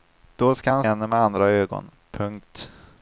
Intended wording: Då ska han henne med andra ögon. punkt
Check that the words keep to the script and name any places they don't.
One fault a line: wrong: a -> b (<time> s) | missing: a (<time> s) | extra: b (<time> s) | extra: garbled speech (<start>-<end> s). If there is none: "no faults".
no faults